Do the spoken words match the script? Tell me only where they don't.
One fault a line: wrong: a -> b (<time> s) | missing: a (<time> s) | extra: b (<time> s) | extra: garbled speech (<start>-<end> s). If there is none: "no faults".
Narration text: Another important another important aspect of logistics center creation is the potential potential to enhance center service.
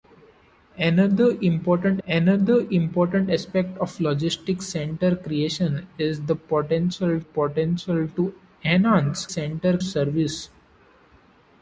no faults